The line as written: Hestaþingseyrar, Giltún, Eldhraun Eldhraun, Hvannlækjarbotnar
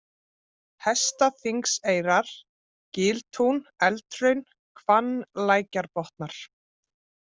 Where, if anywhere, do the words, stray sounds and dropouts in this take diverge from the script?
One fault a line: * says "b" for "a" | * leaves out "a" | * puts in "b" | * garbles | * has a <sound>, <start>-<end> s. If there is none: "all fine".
* leaves out "Eldhraun"